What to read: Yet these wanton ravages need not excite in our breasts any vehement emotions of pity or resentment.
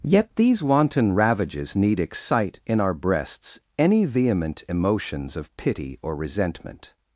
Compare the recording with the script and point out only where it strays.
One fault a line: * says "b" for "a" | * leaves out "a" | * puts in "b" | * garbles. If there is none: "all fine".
* leaves out "not"